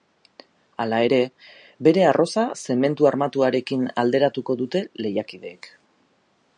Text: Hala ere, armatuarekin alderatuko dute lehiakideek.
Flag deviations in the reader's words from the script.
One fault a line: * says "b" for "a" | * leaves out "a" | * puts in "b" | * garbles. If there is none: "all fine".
* puts in "bere arroza zementu"